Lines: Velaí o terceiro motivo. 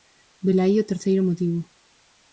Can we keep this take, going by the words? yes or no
yes